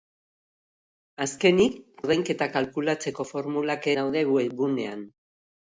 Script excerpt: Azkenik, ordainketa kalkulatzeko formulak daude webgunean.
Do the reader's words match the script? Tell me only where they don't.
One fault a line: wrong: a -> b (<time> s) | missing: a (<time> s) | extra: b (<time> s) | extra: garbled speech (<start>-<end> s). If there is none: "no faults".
no faults